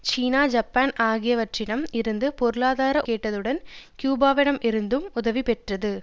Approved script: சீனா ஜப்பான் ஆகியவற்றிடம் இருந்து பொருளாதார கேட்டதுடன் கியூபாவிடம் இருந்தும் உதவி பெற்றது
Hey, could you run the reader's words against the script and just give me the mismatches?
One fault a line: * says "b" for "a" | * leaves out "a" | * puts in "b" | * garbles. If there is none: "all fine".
all fine